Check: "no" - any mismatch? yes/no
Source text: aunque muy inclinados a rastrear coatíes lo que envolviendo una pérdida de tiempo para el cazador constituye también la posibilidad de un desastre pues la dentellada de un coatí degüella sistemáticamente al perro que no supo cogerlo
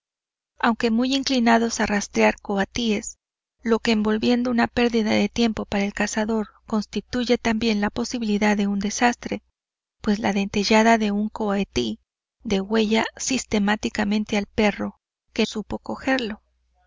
yes